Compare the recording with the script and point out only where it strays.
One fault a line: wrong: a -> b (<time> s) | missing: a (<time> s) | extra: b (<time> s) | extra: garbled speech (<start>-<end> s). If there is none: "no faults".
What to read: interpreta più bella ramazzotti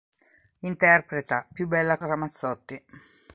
no faults